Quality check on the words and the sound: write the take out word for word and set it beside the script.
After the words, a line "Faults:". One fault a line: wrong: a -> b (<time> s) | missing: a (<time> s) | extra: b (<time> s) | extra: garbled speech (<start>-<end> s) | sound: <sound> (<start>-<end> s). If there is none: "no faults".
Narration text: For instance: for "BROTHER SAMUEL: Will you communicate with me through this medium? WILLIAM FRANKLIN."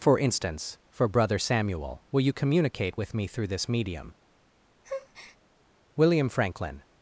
For instance: for "BROTHER SAMUEL: Will you communicate with me through this medium? WILLIAM FRANKLIN."
Faults:
sound: breath (4.8-5.4 s)